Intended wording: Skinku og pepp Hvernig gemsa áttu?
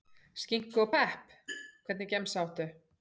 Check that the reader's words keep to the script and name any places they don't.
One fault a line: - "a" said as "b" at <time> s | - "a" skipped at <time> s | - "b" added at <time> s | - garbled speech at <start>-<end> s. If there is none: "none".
none